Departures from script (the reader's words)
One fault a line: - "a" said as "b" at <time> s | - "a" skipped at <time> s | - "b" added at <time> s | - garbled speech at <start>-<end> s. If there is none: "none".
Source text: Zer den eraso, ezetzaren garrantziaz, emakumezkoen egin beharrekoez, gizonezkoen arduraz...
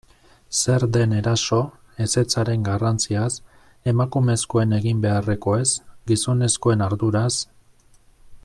none